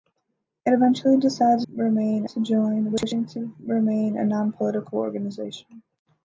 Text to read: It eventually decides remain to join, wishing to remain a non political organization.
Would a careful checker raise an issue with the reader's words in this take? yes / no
no